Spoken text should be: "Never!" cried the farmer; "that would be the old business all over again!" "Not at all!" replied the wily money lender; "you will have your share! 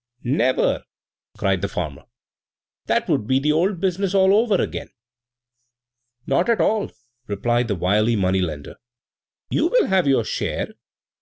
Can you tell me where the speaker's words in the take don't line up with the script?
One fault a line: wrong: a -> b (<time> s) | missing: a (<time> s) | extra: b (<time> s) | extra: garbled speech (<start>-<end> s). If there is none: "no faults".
no faults